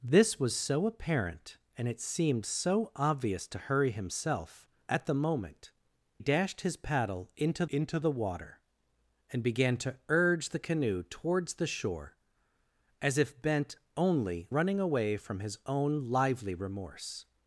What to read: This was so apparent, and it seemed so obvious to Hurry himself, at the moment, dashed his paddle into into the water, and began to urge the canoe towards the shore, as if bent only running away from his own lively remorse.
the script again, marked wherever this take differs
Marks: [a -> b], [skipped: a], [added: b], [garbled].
This was so apparent, and it seemed so obvious to Hurry himself, at the moment, dashed his paddle into into the water, and began to urge the canoe towards the shore, as if bent only running away from his own lively remorse.